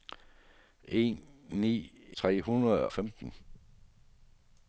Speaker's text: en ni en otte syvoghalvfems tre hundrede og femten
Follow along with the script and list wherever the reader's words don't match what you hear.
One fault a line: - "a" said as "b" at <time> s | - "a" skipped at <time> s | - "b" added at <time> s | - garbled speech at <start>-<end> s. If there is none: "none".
- "en otte syvoghalvfems" skipped at 1.8 s
- "og" skipped at 2.9 s